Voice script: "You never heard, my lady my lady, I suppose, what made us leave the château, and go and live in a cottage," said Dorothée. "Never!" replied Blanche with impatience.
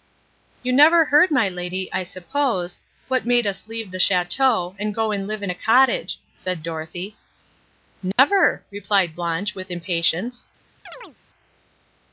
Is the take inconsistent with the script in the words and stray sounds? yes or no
yes